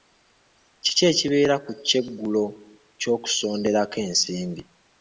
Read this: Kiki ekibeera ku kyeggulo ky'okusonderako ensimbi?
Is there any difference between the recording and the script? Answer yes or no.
no